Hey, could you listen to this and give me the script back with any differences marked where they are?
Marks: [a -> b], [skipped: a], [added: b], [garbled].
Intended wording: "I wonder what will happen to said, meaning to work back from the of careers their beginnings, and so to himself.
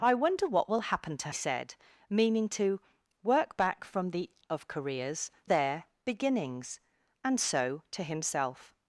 "I wonder what will happen to said, meaning to work back from the of careers their beginnings, and so to himself.